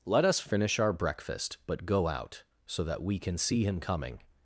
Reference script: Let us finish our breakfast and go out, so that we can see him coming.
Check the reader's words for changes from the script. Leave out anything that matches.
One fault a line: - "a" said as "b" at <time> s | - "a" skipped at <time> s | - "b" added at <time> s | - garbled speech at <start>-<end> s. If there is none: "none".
- "and" said as "but" at 1.7 s